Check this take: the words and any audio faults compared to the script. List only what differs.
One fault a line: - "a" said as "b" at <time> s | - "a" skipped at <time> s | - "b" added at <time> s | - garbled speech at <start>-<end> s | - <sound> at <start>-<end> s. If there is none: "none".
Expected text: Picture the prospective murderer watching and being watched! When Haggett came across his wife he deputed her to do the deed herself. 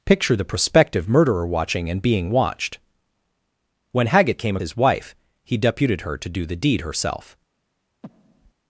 - "across" skipped at 4.6 s
- breath at 8.0-8.5 s